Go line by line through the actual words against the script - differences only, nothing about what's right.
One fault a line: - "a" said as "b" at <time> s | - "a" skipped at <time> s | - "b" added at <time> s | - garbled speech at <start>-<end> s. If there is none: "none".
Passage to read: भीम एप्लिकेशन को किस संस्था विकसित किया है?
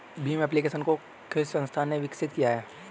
- "ने" added at 1.8 s